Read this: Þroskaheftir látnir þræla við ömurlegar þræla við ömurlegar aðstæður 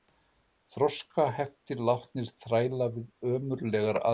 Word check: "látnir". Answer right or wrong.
right